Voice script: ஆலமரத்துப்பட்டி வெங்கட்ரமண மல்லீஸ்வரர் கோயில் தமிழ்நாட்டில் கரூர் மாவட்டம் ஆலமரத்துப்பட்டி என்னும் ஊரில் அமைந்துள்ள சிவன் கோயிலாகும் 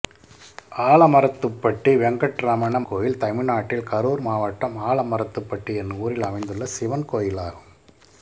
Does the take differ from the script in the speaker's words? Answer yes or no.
yes